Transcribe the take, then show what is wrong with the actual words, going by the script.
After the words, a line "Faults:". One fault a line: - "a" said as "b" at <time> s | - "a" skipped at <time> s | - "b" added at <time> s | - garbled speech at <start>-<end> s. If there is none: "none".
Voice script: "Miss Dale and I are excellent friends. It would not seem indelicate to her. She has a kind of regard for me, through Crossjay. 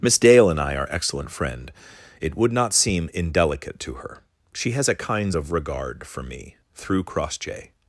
"Miss Dale and I are excellent friend. It would not seem indelicate to her. She has a kinds of regard for me, through Crossjay.
Faults:
- "friends" said as "friend" at 1.3 s
- "kind" said as "kinds" at 5.0 s